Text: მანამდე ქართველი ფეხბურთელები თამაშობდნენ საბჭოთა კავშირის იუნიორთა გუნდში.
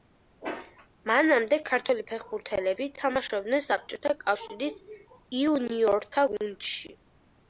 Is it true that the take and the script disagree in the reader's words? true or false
false